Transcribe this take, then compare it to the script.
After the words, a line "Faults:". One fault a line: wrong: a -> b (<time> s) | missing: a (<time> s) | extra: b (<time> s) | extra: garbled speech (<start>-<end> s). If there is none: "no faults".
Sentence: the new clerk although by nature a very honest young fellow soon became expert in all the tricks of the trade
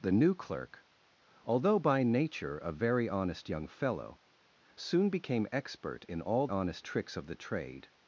the new clerk although by nature a very honest young fellow soon became expert in all honest tricks of the trade
Faults:
wrong: the -> honest (6.5 s)